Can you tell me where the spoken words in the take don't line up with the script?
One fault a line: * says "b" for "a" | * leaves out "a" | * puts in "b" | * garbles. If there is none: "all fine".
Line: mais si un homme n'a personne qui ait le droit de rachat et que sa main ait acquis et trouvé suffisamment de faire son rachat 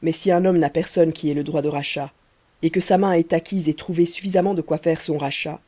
* puts in "quoi"